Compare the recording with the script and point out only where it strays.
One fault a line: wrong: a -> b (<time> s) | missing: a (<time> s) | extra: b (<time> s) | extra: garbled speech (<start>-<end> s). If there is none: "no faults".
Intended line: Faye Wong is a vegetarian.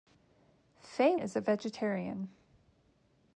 missing: Wong (1.1 s)